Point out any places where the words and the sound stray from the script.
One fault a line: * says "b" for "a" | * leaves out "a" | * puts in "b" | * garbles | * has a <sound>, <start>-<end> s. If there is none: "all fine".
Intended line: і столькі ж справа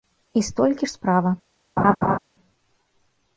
* has a laugh, 1.8-2.2 s